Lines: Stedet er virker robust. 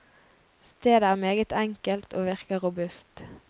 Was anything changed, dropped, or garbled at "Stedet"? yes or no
no